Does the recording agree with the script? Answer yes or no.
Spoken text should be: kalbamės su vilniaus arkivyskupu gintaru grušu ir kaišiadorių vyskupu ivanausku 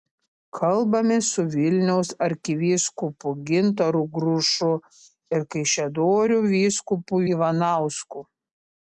yes